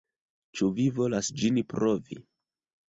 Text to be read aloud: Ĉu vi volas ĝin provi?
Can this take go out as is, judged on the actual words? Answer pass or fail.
pass